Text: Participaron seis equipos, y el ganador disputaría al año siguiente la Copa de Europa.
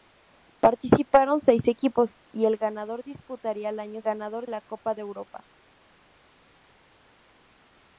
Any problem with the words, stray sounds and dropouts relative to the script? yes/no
yes